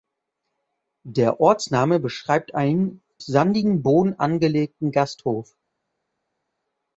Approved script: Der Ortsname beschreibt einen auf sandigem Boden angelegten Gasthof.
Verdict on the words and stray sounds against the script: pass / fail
fail